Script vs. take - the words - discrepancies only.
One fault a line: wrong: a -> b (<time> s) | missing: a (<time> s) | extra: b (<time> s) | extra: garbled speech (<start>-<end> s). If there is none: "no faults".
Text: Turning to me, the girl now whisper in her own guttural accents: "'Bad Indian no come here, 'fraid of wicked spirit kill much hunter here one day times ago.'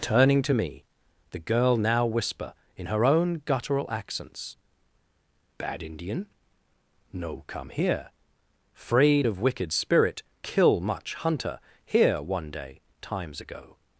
no faults